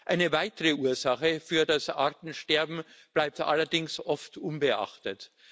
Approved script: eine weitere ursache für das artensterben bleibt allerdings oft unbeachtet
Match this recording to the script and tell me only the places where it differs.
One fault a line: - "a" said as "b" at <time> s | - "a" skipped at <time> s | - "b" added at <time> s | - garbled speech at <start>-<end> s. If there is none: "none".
none